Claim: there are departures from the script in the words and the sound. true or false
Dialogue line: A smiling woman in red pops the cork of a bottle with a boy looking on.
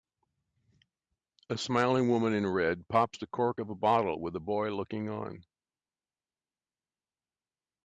false